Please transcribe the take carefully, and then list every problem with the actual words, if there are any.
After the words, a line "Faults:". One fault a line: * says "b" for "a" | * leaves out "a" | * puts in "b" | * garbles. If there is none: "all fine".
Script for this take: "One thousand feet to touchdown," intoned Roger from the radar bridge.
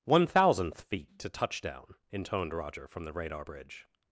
"One thousandth feet to touchdown," intoned Roger from the radar bridge.
Faults:
* says "thousandth" for "thousand"